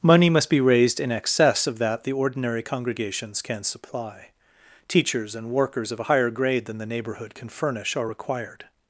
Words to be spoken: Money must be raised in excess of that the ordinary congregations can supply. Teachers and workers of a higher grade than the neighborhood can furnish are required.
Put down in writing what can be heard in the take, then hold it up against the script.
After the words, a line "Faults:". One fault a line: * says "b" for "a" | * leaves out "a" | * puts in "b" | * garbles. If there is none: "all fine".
Money must be raised in excess of that the ordinary congregations can supply. Teachers and workers of a higher grade than the neighborhood can furnish are required.
Faults:
all fine